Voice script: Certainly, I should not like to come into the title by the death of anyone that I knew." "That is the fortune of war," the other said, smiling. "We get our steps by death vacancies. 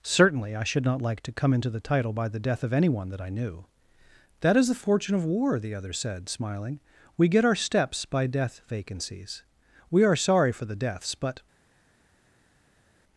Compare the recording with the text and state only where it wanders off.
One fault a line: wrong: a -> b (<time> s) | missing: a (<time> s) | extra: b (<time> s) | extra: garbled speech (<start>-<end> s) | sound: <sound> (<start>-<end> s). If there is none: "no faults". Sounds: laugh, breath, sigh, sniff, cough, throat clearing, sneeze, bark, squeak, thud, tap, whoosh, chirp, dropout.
extra: We are sorry for the deaths but (9.9 s)